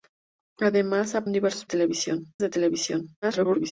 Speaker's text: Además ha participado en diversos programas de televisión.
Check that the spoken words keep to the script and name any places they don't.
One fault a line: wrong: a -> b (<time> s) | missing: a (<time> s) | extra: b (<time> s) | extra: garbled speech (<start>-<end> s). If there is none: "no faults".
missing: participado (1.3 s)
wrong: programas -> televisión (1.6 s)
extra: garbled speech (3.2-3.7 s)